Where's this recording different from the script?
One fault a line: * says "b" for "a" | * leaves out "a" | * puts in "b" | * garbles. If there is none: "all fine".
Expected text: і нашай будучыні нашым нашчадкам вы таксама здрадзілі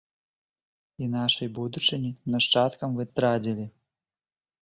* leaves out "нашым"
* leaves out "таксама"